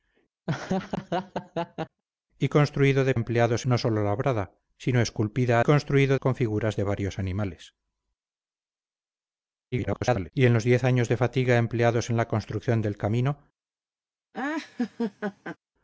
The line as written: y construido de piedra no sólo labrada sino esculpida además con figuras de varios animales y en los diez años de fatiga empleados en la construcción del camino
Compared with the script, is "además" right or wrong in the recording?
wrong